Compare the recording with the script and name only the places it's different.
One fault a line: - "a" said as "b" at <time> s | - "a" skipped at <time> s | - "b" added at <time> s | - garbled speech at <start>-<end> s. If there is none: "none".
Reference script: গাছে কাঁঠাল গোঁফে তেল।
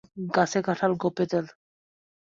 none